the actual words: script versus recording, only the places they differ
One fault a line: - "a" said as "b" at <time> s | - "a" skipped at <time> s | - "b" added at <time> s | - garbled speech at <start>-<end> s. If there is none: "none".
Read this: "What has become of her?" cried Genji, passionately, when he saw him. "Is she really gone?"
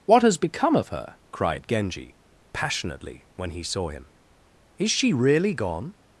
none